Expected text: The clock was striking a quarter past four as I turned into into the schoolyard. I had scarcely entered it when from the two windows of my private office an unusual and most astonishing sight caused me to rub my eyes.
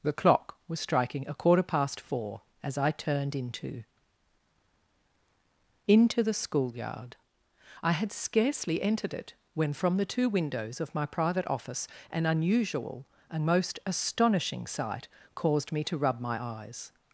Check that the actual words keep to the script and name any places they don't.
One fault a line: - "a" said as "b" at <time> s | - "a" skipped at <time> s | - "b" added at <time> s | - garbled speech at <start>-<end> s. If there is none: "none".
none